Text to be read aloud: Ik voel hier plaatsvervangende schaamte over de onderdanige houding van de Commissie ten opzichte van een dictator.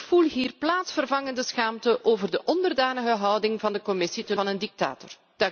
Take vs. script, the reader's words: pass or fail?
fail